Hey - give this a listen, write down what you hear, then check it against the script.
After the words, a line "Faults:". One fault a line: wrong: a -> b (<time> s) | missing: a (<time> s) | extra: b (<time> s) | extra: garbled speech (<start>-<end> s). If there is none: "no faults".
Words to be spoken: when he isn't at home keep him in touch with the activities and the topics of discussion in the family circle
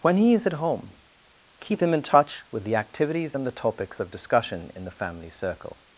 when he is at home keep him in touch with the activities and the topics of discussion in the family circle
Faults:
wrong: isn't -> is (0.3 s)